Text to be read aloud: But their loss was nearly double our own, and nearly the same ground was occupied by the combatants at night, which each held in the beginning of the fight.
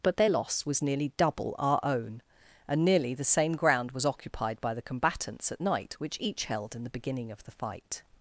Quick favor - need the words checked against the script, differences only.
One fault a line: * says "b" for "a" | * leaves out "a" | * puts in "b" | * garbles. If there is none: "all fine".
all fine